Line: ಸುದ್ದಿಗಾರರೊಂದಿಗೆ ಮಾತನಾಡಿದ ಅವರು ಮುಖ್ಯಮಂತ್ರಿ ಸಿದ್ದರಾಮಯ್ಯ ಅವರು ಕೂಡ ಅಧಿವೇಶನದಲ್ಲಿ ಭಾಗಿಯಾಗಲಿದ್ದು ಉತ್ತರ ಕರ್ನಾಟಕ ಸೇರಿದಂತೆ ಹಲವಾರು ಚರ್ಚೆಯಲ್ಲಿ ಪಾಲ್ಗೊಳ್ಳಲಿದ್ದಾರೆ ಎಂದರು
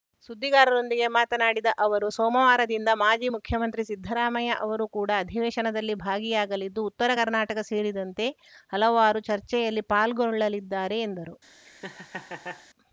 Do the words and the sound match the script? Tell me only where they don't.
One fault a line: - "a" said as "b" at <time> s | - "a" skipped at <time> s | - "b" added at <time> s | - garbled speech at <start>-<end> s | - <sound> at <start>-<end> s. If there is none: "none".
- "ಸೋಮವಾರದಿಂದ ಮಾಜಿ" added at 2.1 s
- laugh at 11.6-12.7 s